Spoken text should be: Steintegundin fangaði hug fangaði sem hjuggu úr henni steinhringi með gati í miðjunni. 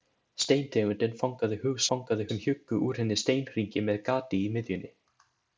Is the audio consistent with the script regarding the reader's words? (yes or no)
yes